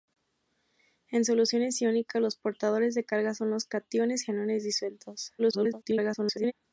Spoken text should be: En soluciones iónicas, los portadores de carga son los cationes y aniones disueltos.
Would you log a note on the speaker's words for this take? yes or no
yes